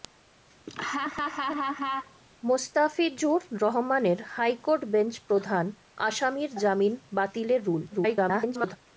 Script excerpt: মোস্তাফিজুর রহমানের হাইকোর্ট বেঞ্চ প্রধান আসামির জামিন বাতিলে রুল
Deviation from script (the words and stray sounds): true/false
true